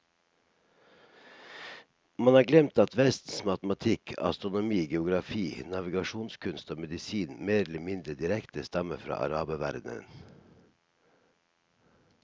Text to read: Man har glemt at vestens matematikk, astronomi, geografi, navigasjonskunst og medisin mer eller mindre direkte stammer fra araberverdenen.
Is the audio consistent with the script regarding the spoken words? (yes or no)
yes